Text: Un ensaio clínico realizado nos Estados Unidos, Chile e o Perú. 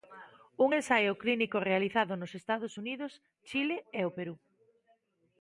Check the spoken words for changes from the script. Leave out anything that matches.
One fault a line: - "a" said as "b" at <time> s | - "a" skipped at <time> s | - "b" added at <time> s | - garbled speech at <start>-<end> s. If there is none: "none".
none